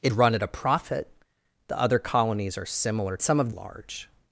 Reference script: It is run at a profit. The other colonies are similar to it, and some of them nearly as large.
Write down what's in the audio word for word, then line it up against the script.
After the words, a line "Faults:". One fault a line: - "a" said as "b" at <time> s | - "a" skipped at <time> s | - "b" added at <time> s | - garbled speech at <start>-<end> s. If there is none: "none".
It run at a profit. The other colonies are similar some of large.
Faults:
- "is" skipped at 0.1 s
- "to it and" skipped at 3.2 s
- "them nearly as" skipped at 3.5 s